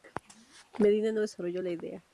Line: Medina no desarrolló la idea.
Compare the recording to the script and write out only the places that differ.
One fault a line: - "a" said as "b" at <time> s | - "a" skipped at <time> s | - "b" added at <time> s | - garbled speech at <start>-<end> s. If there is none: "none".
none